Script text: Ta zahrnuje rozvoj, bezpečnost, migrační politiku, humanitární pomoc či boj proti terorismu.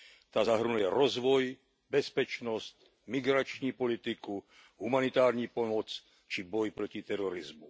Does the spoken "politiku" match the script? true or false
true